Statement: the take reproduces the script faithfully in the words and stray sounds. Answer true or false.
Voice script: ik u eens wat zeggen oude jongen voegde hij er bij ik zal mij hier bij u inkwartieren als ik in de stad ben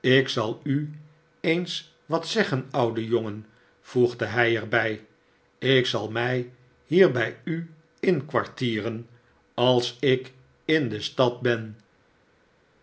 false